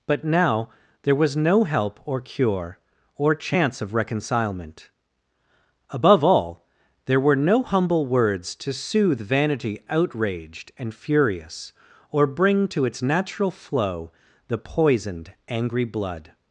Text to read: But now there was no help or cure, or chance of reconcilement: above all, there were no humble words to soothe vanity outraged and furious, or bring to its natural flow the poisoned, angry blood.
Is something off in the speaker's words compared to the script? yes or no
no